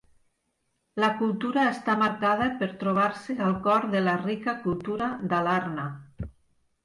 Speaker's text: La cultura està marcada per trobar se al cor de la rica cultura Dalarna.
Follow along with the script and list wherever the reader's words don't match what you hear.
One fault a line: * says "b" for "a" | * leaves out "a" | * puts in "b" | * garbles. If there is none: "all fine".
all fine